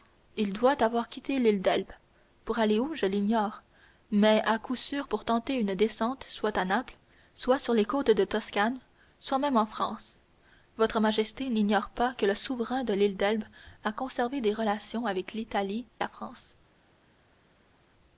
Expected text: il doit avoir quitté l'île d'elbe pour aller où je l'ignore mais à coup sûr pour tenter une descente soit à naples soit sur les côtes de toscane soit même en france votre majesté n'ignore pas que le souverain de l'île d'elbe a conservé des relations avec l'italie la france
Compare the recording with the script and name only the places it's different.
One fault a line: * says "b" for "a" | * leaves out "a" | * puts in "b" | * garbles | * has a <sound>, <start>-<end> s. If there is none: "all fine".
all fine